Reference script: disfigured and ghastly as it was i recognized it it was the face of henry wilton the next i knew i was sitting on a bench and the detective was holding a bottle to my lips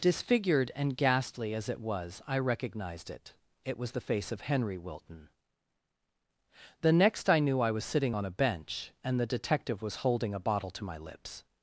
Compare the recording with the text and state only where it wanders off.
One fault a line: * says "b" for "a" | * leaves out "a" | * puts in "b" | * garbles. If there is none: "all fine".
all fine